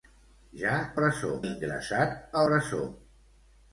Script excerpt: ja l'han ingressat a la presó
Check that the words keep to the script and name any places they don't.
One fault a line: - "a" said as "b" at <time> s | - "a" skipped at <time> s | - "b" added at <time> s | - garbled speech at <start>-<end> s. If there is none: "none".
- "l'han" said as "presó" at 1.0 s
- "la" skipped at 2.5 s